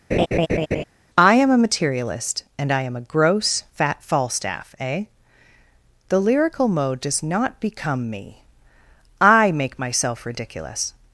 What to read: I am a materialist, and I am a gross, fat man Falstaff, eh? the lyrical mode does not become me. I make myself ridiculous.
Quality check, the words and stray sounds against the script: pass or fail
fail